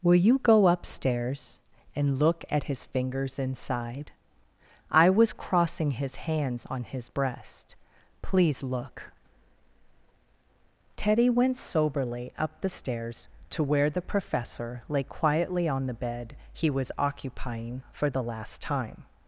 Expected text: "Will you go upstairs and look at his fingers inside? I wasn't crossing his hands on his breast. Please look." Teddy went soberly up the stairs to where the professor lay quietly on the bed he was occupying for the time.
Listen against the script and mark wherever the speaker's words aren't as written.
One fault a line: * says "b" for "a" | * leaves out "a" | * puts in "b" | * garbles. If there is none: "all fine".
* says "was" for "wasn't"
* puts in "last"